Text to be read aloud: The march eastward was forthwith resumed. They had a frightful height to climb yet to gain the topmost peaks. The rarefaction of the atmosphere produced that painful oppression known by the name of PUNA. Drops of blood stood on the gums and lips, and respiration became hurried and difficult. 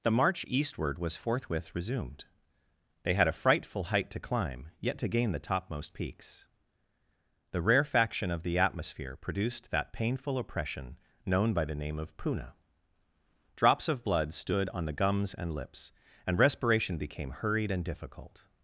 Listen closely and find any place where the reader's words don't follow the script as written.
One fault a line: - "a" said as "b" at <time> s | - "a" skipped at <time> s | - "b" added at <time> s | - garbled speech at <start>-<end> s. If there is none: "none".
none